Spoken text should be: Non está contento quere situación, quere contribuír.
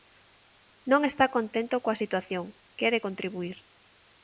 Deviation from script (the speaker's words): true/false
true